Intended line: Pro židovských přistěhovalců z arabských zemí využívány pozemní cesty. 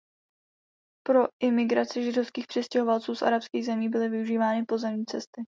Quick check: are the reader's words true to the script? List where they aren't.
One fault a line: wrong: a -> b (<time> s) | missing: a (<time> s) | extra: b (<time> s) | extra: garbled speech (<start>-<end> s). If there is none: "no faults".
extra: imigraci (1.4 s)
extra: byly (3.9 s)